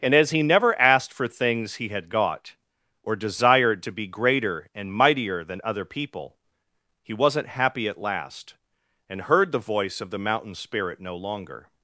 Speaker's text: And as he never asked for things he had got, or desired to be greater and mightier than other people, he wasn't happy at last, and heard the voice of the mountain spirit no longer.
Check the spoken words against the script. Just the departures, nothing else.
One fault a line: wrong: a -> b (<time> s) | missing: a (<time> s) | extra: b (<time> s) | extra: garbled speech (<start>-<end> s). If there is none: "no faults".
no faults